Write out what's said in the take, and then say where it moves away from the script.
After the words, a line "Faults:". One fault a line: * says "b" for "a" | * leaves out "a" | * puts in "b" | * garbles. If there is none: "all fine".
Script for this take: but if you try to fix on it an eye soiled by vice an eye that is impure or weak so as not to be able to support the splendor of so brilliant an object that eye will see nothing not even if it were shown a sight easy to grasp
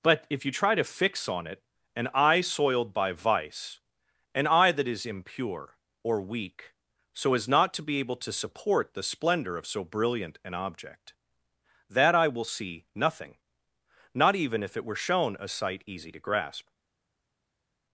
but if you try to fix on it an eye soiled by vice an eye that is impure or weak so as not to be able to support the splendor of so brilliant an object that eye will see nothing not even if it were shown a sight easy to grasp
Faults:
all fine